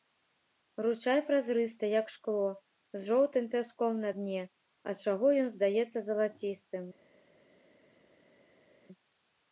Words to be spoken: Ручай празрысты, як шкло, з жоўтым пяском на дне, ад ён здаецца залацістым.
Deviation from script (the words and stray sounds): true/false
true